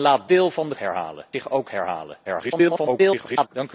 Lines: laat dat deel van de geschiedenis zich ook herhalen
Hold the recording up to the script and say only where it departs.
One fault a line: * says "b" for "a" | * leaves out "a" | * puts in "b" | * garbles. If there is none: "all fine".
* leaves out "dat"
* says "herhalen" for "geschiedenis"
* garbles